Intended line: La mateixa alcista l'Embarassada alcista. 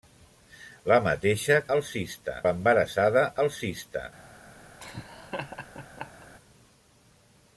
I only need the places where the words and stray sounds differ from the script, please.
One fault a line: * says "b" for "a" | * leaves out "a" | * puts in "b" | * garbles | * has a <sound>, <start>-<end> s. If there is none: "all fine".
* has a laugh, 4.8-6.3 s